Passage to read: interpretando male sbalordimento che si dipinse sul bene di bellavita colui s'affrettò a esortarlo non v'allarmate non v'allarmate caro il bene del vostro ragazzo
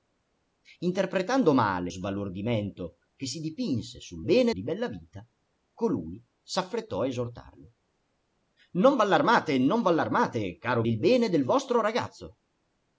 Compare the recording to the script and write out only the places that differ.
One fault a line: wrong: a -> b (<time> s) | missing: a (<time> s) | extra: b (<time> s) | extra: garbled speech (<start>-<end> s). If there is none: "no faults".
no faults